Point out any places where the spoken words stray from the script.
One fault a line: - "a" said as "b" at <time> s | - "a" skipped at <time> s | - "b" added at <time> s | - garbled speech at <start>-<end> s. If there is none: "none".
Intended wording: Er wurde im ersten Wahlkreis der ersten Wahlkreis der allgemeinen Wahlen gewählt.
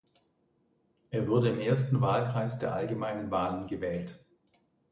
- "ersten Wahlkreis der" skipped at 2.7 s